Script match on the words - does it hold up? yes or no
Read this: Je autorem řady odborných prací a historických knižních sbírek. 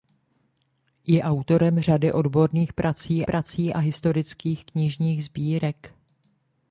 no